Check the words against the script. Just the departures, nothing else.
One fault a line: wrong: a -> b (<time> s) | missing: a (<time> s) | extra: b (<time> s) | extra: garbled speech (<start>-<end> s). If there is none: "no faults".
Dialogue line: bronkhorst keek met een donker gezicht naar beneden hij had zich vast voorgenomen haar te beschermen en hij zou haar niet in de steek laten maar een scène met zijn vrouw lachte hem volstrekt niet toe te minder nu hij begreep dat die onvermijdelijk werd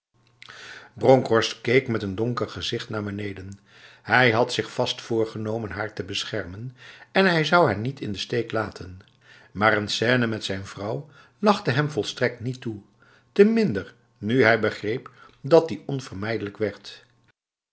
no faults